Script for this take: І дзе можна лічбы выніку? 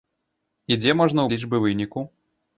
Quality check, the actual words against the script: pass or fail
pass